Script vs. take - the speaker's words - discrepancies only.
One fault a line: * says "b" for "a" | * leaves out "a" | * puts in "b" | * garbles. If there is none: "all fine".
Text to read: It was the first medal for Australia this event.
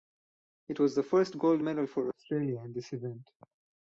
* puts in "gold"
* puts in "in"